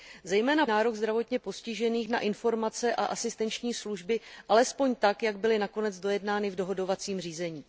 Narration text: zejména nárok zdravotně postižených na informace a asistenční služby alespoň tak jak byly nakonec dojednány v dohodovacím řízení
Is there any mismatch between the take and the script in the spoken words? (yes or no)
no